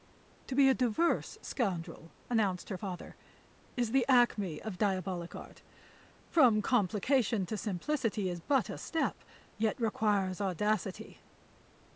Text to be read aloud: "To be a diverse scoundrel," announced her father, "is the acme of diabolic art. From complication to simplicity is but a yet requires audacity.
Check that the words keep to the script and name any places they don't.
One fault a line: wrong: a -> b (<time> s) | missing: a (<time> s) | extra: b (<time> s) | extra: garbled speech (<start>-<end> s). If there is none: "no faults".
extra: step (8.8 s)